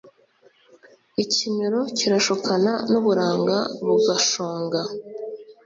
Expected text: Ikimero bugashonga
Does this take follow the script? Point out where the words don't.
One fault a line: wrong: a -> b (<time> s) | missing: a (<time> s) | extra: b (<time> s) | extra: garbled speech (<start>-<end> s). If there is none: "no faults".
extra: kirashukana n'uburanga (2.0 s)